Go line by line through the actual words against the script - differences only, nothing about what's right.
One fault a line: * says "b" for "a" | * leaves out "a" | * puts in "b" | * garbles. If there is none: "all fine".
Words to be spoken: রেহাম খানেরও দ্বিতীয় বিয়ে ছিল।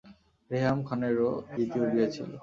all fine